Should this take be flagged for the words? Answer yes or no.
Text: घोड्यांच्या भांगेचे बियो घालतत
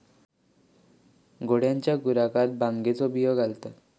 yes